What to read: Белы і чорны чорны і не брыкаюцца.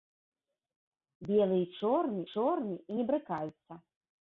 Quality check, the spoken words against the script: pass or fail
pass